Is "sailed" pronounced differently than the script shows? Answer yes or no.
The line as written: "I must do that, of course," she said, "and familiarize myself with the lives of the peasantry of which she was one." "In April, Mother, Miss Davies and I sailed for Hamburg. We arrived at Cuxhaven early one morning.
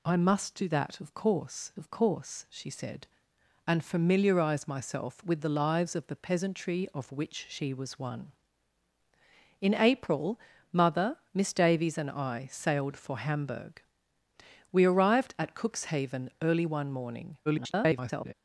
no